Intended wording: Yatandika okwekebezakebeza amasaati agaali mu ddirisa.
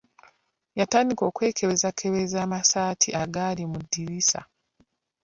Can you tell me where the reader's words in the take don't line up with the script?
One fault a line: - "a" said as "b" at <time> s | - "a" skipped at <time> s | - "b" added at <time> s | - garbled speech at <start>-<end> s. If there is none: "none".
none